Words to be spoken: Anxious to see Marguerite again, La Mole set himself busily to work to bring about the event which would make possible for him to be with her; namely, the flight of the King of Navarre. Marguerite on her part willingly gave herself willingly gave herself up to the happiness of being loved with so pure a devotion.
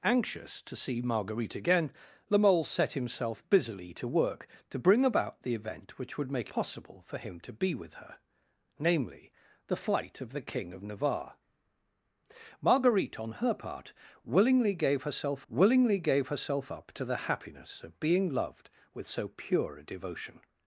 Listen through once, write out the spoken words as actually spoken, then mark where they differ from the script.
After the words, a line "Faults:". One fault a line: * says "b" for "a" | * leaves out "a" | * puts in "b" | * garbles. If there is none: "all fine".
Anxious to see Marguerite again, La Mole set himself busily to work to bring about the event which would make possible for him to be with her; namely, the flight of the King of Navarre. Marguerite on her part willingly gave herself willingly gave herself up to the happiness of being loved with so pure a devotion.
Faults:
all fine